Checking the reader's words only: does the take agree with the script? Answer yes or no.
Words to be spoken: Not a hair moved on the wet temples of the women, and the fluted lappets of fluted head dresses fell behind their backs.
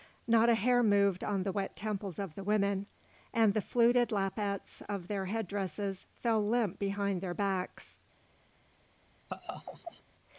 no